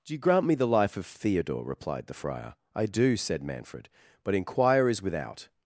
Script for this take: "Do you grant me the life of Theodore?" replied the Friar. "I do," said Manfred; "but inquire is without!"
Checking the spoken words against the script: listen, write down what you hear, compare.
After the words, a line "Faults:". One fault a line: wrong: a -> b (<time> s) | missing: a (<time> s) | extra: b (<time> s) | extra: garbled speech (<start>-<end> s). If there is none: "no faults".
"Do you grant me the life of Theodore?" replied the Friar. "I do," said Manfred; "but inquire is without!"
Faults:
no faults